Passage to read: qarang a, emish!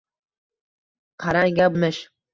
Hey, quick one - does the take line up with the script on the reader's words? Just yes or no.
yes